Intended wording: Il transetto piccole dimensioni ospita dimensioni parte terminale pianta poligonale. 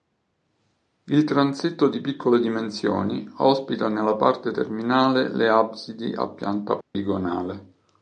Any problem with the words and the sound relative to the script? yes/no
yes